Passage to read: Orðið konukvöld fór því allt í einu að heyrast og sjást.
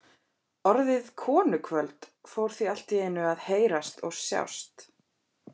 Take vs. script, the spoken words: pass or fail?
pass